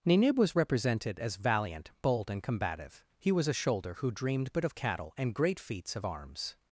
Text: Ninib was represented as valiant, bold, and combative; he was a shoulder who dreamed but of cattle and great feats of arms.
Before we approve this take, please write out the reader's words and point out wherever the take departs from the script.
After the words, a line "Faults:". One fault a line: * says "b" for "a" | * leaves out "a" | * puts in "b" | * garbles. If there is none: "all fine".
Ninib was represented as valiant, bold, and combative; he was a shoulder who dreamed but of cattle and great feats of arms.
Faults:
all fine